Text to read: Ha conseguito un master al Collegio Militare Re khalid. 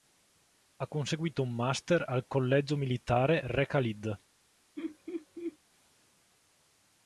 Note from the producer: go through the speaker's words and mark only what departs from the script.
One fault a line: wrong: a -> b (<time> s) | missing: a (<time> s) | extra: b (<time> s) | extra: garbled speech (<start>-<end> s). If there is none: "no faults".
no faults